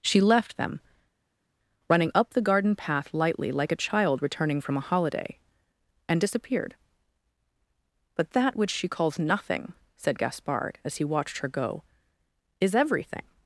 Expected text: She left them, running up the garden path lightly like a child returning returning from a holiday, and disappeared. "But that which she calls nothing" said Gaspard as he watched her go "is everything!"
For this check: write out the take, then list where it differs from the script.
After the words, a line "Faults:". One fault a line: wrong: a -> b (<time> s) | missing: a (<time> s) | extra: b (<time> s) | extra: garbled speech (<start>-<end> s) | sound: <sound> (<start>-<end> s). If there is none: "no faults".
She left them, running up the garden path lightly like a child returning from a holiday, and disappeared. "But that which she calls nothing" said Gaspard as he watched her go "is everything!"
Faults:
missing: returning (4.6 s)